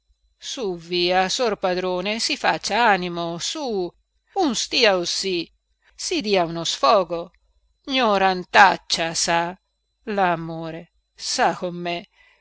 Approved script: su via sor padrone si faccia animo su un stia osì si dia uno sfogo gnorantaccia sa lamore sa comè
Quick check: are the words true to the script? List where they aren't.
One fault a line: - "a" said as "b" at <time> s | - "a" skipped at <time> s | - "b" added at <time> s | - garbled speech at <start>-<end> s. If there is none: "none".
none